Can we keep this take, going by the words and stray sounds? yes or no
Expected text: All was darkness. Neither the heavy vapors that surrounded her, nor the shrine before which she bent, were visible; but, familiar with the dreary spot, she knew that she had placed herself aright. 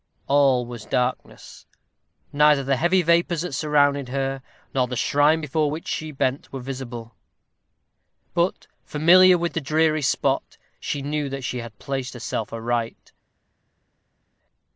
yes